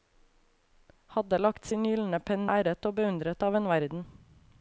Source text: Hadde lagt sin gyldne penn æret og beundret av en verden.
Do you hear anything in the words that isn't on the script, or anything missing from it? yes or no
no